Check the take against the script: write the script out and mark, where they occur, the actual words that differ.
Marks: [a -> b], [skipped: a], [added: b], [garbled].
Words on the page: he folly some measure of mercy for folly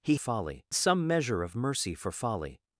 he folly some measure of mercy for folly